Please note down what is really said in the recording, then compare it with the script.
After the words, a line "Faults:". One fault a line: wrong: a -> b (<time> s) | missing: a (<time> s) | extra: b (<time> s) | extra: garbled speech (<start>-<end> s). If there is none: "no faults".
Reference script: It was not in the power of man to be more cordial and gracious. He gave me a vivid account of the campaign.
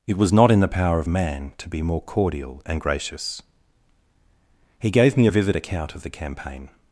It was not in the power of man to be more cordial and gracious. He gave me a vivid account of the campaign.
Faults:
no faults